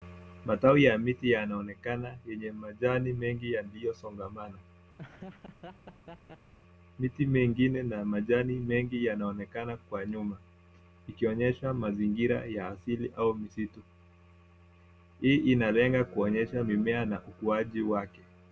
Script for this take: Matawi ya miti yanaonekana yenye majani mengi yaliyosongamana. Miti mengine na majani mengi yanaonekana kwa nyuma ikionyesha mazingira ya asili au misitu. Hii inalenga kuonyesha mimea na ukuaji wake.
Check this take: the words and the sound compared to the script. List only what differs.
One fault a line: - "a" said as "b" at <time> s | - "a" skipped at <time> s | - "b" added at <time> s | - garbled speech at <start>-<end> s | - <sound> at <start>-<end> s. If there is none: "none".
- laugh at 5.0-6.5 s